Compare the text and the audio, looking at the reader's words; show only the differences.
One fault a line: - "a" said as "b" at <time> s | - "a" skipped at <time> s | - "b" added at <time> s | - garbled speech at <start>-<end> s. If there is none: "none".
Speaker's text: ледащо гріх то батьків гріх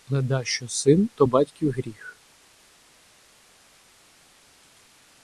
- "гріх" said as "син" at 0.7 s